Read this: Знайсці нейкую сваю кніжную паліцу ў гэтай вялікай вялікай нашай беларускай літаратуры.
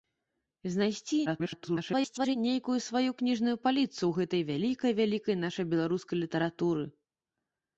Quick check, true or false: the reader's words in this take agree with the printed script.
false